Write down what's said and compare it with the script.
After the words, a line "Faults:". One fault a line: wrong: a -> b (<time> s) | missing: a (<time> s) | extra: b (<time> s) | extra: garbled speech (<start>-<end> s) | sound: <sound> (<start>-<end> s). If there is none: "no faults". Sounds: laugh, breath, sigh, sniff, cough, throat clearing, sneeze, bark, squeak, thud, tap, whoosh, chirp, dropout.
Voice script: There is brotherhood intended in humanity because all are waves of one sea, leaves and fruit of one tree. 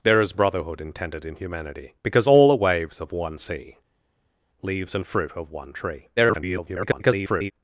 There is brotherhood intended in humanity because all are waves of one sea, leaves and fruit of one tree. [garbled]
Faults:
extra: garbled speech (6.2-7.5 s)